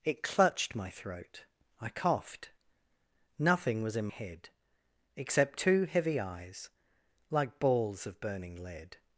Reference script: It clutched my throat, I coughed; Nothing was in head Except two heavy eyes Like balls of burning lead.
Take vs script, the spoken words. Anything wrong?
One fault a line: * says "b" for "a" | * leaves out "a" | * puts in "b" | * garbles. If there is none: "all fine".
all fine